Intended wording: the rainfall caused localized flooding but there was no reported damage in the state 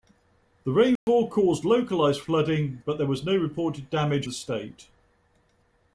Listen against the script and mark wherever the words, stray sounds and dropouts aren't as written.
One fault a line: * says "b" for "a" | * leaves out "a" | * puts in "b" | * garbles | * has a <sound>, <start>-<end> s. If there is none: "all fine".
* has a dropout, 1.0-1.1 s
* leaves out "in"